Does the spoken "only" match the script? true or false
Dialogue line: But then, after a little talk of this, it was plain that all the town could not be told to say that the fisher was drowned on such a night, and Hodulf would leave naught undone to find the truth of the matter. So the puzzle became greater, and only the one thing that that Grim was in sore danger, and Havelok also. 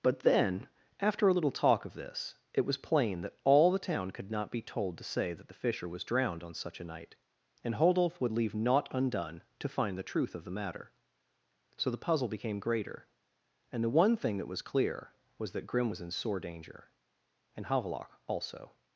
false